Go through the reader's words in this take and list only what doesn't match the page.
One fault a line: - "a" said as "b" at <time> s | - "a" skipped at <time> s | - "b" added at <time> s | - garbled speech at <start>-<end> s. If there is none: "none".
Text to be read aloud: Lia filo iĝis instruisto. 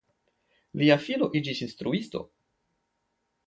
none